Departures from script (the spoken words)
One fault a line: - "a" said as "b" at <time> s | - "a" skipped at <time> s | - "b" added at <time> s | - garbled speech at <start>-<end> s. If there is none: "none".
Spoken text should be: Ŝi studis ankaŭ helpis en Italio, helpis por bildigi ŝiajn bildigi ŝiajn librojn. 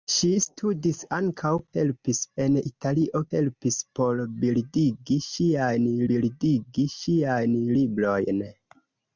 none